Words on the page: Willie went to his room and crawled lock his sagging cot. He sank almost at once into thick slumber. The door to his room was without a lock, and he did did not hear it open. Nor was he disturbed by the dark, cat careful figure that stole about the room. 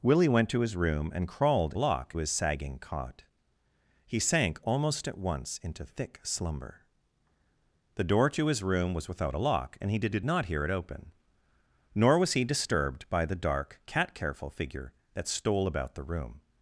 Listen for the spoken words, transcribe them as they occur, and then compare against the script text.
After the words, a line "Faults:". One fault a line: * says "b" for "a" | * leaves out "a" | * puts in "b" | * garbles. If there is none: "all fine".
Willie went to his room and crawled lock his sagging cot. He sank almost at once into thick slumber. The door to his room was without a lock, and he did did not hear it open. Nor was he disturbed by the dark, cat careful figure that stole about the room.
Faults:
all fine